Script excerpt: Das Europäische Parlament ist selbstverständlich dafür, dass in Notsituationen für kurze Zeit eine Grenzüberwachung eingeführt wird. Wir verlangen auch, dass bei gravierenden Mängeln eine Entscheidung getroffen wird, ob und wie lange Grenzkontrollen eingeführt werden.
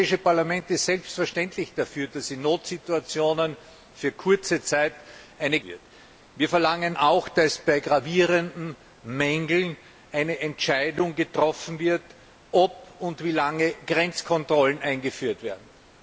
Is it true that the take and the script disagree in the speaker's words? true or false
true